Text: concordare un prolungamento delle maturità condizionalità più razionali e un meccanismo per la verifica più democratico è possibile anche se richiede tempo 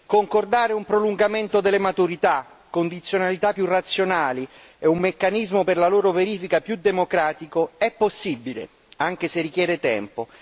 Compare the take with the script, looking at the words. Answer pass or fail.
fail